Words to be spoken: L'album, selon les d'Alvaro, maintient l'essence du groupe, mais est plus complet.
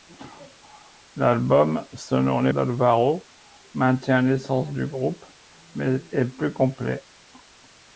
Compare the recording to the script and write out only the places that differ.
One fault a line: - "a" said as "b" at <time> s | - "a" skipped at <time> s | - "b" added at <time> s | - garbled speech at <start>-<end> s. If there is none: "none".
none